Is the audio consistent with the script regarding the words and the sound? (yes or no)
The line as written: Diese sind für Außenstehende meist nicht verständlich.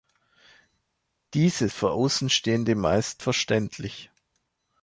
no